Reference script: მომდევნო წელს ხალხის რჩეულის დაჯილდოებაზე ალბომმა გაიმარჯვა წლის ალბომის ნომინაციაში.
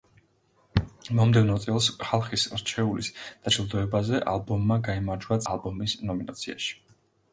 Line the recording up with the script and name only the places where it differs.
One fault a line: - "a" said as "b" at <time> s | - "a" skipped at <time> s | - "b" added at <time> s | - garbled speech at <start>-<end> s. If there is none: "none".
- "წლის" skipped at 5.4 s